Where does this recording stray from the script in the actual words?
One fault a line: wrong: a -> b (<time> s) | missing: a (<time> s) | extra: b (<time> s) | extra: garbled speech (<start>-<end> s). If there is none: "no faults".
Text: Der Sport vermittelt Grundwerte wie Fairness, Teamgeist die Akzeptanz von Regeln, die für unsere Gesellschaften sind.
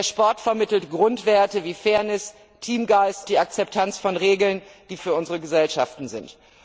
no faults